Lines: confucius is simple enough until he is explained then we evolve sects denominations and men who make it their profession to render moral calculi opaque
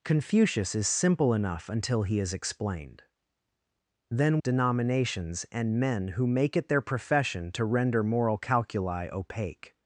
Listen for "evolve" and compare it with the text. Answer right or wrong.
wrong